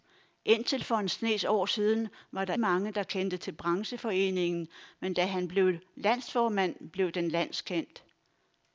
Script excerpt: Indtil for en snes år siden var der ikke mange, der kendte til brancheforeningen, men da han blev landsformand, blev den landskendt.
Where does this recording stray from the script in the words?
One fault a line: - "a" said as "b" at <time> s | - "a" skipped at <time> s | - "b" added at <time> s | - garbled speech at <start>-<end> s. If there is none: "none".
- "ikke" skipped at 2.5 s